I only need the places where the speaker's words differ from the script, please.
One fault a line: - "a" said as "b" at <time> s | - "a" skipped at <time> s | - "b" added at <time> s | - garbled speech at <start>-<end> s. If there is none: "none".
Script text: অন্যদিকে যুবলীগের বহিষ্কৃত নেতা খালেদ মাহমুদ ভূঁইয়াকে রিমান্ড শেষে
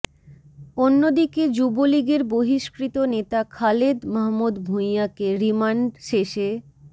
none